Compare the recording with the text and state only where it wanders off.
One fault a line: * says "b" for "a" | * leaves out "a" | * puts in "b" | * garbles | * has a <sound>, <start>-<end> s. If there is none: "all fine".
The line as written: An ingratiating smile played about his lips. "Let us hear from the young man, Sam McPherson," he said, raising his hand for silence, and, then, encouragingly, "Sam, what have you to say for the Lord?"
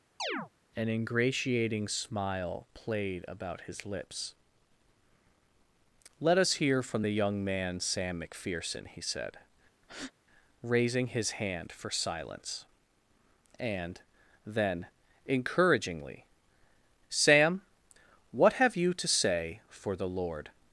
* has a chirp, 0.2-0.5 s
* has a breath, 9.8-10.1 s